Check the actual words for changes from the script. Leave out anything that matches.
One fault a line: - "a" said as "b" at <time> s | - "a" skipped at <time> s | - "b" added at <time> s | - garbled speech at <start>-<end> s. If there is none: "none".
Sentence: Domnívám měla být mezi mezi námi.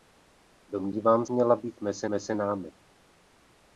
none